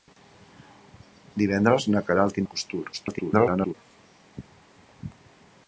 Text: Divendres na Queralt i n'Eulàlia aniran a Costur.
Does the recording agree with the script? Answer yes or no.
no